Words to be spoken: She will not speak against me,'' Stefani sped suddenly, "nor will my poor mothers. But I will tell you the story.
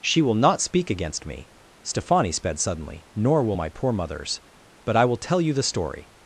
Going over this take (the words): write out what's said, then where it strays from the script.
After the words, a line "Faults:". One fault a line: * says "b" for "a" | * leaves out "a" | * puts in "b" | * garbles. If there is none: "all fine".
She will not speak against me,'' Stefani sped suddenly, "nor will my poor mothers. But I will tell you the story.
Faults:
all fine